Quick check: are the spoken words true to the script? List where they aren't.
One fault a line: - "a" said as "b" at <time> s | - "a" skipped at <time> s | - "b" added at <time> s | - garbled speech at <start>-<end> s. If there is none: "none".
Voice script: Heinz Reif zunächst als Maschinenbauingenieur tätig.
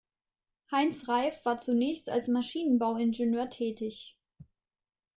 - "war" added at 1.4 s